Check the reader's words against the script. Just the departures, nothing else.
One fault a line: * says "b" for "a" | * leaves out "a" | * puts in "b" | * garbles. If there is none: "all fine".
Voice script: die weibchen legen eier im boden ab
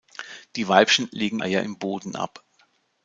all fine